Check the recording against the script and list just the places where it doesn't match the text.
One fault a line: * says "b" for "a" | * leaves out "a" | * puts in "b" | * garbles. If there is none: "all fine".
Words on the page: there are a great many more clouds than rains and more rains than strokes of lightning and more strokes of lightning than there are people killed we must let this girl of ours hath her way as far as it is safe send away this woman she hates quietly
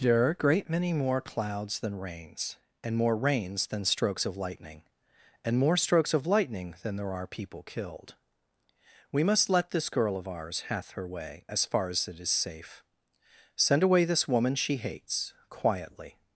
all fine